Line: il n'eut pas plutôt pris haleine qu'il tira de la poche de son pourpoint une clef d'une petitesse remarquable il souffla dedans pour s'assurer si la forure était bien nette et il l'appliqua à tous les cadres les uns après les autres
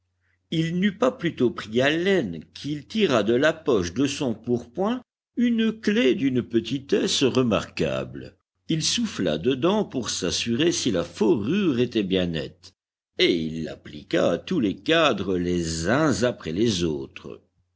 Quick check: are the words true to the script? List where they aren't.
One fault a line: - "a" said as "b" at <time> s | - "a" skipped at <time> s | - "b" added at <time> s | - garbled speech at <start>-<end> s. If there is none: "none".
none